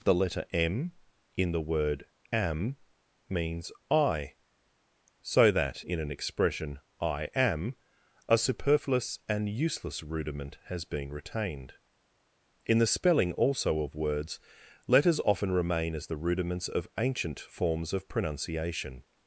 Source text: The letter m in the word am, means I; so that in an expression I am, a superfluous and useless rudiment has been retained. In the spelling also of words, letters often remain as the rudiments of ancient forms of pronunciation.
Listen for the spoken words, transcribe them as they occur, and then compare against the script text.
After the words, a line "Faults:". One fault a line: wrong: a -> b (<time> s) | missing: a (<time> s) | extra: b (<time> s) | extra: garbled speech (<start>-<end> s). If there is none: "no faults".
The letter m in the word am, means I; so that in an expression I am, a superfluous and useless rudiment has been retained. In the spelling also of words, letters often remain as the rudiments of ancient forms of pronunciation.
Faults:
no faults